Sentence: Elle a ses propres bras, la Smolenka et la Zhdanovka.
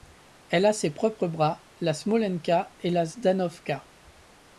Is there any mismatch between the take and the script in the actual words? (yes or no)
no